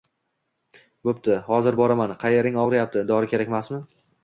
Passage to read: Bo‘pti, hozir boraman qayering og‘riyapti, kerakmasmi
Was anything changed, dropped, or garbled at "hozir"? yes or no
no